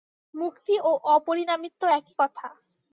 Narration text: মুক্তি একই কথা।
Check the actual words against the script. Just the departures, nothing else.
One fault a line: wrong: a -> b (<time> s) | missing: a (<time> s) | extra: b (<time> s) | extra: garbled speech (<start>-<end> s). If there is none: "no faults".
extra: ও অপরিণামিত্ব (0.8 s)